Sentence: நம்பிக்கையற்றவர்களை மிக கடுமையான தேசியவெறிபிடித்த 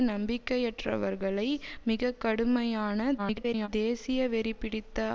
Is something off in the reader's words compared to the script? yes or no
yes